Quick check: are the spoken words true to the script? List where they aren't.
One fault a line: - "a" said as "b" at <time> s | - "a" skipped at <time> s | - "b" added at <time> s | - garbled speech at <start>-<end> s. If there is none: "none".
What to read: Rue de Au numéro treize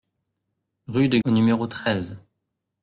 none